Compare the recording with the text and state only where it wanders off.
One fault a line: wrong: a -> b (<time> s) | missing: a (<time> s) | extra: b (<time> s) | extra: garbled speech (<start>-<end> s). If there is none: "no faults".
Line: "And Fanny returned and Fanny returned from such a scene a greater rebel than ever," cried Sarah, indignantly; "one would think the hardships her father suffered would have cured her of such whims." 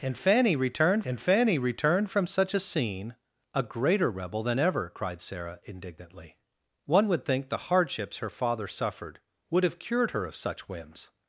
no faults